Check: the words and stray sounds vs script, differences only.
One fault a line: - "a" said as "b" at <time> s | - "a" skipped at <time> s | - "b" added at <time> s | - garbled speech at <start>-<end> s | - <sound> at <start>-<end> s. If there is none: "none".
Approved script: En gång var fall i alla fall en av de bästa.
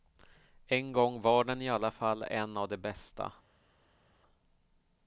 - "fall" said as "den" at 1.4 s